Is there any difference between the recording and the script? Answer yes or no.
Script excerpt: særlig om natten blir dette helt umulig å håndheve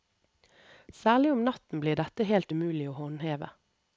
no